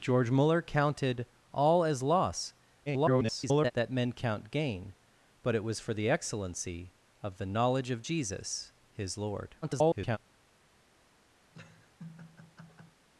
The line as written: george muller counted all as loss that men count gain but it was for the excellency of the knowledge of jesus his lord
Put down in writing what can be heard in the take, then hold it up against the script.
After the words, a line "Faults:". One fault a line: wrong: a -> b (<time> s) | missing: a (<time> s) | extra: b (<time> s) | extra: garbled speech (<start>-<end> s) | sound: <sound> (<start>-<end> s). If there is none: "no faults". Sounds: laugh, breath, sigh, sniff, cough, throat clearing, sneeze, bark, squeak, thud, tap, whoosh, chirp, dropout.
george muller counted all as loss [garbled] that men count gain but it was for the excellency of the knowledge of jesus his lord [garbled]
Faults:
extra: garbled speech (2.9-3.7 s)
extra: garbled speech (9.6-10.2 s)
sound: laugh (11.5-13.0 s)